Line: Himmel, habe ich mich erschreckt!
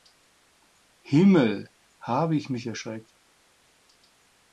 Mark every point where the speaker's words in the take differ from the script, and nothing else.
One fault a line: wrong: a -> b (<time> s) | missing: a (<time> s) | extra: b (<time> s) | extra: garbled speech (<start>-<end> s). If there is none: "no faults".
no faults